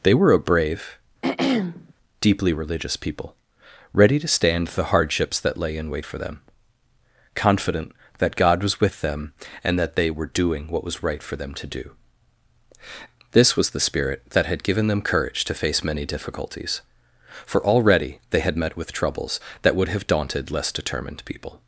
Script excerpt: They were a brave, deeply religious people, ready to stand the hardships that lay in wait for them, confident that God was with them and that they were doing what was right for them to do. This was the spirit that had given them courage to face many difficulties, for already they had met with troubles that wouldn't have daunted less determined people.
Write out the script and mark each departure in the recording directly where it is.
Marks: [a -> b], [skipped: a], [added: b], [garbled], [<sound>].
They were a brave, [throat clearing] deeply religious people, ready to stand the hardships that lay in wait for them, confident that God was with them and that they were doing what was right for them to do. This was the spirit that had given them courage to face many difficulties, for already they had met with troubles that [wouldn't -> would] have daunted less determined people.